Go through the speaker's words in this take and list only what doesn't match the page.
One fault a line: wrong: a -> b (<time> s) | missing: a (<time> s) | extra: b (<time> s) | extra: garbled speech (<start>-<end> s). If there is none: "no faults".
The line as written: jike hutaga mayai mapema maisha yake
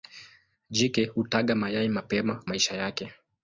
no faults